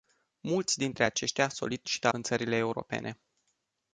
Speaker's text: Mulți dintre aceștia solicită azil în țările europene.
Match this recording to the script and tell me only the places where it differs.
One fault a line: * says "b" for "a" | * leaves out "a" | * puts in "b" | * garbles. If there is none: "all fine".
* leaves out "azil"